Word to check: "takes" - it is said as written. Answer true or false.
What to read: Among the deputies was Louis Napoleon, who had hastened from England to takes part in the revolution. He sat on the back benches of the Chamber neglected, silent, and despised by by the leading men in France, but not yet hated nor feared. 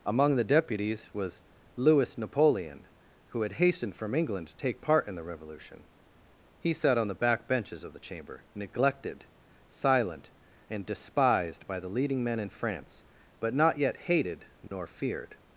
false